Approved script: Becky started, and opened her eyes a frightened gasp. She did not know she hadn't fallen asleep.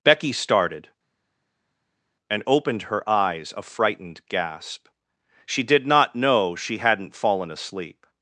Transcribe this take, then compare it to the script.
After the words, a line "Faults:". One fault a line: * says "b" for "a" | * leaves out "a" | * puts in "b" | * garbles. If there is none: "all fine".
Becky started, and opened her eyes a frightened gasp. She did not know she hadn't fallen asleep.
Faults:
all fine